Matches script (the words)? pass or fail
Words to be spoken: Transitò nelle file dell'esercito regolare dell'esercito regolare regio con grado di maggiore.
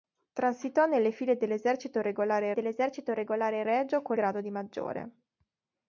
pass